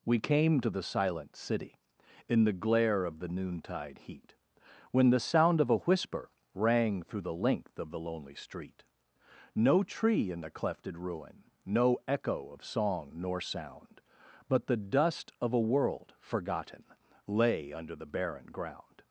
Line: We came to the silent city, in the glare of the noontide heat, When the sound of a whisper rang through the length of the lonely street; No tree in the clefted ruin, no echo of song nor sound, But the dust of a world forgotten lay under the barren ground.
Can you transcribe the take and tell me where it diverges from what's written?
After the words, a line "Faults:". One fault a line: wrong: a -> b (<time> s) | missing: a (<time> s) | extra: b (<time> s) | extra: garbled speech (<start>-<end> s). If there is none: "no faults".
We came to the silent city, in the glare of the noontide heat, When the sound of a whisper rang through the length of the lonely street; No tree in the clefted ruin, no echo of song nor sound, But the dust of a world forgotten lay under the barren ground.
Faults:
no faults